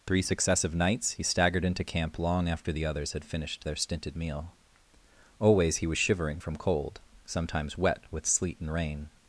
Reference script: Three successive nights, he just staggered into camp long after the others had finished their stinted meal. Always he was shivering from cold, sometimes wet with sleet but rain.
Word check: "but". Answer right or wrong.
wrong